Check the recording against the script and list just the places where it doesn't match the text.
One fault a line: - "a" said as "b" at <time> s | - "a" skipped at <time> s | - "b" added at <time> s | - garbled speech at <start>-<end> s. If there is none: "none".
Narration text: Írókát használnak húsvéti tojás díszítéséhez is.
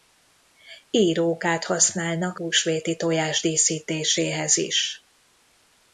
none